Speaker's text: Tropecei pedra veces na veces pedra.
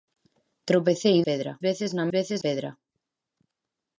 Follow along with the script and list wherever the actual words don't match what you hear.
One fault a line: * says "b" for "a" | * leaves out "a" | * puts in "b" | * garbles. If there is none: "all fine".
all fine